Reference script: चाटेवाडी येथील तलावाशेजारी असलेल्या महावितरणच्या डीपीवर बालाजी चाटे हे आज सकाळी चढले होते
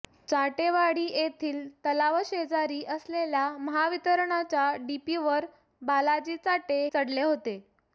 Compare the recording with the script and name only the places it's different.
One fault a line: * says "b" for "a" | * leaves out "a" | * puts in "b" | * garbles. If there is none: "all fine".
* leaves out "हे आज सकाळी"